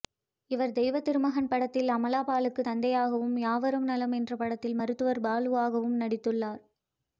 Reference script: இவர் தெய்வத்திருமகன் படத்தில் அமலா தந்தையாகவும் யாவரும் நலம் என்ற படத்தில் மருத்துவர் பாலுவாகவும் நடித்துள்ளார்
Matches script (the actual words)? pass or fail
fail